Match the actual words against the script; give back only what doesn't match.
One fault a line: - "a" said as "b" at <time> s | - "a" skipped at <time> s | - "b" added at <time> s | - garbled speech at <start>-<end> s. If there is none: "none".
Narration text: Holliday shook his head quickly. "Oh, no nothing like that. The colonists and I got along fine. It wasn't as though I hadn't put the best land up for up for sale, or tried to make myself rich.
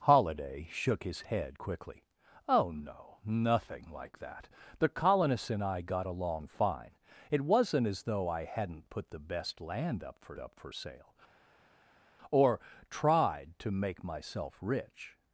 none